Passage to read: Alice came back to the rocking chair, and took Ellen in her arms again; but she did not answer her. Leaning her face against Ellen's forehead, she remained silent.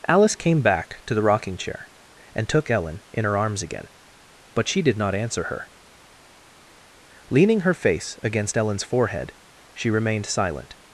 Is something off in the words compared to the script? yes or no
no